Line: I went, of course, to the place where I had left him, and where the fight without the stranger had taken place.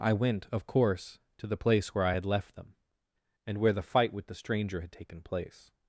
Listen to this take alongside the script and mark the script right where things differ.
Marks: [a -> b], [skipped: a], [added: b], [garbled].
I went, of course, to the place where I had left [him, -> them] and where the fight [without -> with] the stranger had taken place.